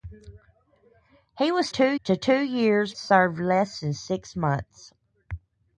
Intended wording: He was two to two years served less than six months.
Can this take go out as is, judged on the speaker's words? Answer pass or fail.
pass